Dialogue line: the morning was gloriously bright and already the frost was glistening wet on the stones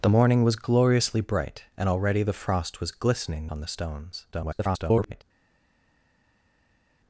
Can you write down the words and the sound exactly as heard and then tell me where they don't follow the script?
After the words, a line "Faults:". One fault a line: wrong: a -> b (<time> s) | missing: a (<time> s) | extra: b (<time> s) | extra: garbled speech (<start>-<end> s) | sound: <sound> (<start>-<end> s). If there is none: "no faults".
the morning was gloriously bright and already the frost was glistening on the stones [garbled]
Faults:
missing: wet (3.5 s)
extra: garbled speech (4.3-5.2 s)